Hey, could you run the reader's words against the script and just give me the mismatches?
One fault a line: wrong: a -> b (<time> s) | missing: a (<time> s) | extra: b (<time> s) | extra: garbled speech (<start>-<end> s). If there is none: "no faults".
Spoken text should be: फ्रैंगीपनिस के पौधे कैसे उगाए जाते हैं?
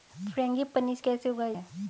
missing: के पौधे (1.0 s)
missing: जाते (1.5 s)